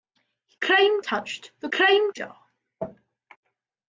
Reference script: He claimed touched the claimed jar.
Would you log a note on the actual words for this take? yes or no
no